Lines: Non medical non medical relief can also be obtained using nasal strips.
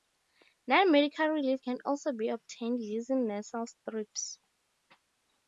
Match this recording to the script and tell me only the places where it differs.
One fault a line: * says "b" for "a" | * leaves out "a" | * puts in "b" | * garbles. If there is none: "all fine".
* leaves out "non medical"